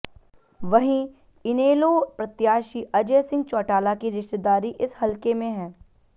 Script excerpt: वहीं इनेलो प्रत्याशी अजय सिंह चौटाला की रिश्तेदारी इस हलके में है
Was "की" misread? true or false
false